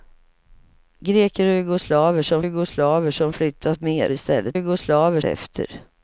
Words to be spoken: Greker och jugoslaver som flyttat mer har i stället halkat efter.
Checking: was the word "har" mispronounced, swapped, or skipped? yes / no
yes